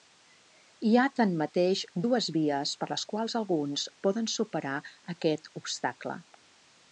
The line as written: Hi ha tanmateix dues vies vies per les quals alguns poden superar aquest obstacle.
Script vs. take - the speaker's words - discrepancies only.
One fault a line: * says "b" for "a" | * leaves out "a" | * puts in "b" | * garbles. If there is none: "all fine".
* leaves out "vies"